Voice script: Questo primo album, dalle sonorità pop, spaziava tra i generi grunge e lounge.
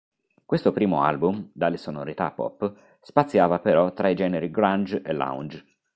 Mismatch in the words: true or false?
true